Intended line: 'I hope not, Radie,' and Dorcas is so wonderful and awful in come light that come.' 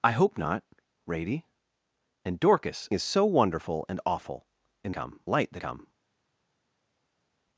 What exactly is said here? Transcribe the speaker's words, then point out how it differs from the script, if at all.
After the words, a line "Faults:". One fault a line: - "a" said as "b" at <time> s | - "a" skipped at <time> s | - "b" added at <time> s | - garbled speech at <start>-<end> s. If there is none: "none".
'I hope not, Radie,' and Dorcas is so wonderful and awful in come light that come.'
Faults:
none